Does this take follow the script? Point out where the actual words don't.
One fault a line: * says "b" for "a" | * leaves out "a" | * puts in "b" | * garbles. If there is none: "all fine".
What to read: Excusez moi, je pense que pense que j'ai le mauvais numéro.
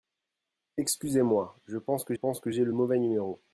all fine